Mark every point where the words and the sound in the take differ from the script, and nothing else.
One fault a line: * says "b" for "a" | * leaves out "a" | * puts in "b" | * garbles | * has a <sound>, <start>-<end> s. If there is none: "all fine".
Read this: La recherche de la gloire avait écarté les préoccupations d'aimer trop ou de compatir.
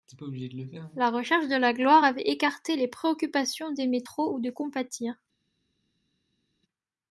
all fine